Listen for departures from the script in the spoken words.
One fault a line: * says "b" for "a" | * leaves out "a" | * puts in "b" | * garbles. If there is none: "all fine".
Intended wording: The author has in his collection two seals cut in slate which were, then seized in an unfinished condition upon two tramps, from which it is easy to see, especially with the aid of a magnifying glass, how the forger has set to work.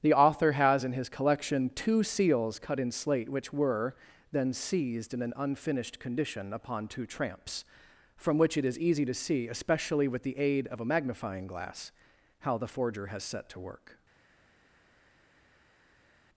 all fine